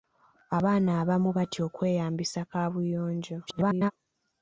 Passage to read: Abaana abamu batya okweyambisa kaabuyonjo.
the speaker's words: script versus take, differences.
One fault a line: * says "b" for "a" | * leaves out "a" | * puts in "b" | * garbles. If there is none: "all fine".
* garbles